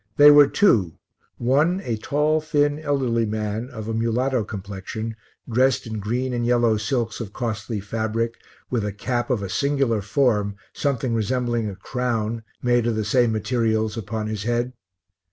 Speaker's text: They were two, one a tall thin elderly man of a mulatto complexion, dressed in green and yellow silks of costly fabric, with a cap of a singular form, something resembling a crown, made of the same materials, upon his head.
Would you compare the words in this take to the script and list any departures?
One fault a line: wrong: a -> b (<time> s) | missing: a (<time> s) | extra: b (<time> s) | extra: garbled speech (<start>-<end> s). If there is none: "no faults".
no faults